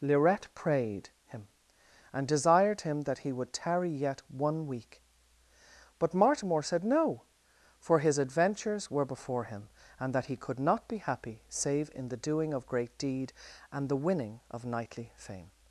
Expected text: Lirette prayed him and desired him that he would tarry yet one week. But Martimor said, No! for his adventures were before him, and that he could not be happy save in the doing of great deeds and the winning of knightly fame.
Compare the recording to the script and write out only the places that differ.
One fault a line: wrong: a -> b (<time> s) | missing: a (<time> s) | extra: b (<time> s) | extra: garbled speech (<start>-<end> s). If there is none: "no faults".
wrong: deeds -> deed (13.0 s)